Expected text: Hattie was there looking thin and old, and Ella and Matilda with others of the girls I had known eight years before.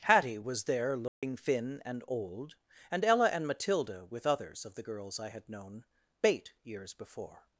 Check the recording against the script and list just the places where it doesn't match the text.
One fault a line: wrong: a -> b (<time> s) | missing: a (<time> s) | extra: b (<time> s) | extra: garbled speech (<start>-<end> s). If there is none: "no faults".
wrong: eight -> bait (6.2 s)